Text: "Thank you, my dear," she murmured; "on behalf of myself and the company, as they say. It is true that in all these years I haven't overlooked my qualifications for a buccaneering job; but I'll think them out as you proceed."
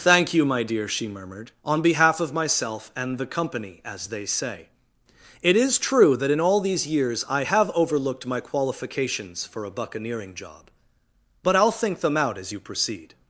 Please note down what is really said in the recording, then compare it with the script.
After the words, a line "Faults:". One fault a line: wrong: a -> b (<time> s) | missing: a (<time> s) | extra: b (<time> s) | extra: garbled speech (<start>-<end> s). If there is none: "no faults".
"Thank you, my dear," she murmured; "on behalf of myself and the company, as they say. It is true that in all these years I have overlooked my qualifications for a buccaneering job; but I'll think them out as you proceed."
Faults:
wrong: haven't -> have (7.4 s)